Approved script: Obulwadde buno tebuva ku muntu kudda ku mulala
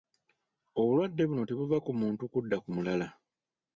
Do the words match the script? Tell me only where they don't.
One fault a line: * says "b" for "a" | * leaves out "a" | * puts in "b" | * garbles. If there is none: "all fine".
all fine